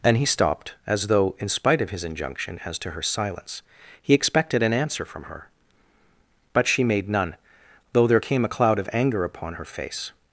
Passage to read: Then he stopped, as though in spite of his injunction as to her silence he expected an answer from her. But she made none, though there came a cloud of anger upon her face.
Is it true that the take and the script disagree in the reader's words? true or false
true